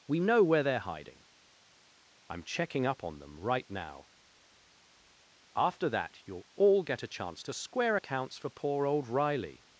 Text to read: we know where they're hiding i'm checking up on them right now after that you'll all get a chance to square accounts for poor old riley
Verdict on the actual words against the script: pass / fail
pass